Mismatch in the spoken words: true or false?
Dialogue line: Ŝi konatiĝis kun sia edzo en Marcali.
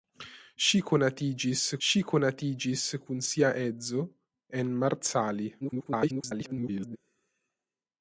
true